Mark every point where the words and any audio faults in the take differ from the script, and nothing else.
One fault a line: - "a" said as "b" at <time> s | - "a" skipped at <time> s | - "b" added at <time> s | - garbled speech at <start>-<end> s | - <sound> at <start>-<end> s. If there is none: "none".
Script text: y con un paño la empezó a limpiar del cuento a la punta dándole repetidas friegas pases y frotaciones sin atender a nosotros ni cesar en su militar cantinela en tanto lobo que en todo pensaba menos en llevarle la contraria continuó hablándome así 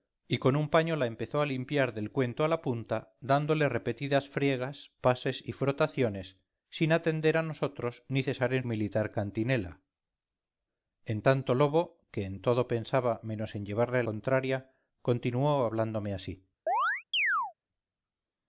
- "su" skipped at 8.7 s
- "la" skipped at 14.0 s
- chirp at 16.7-17.5 s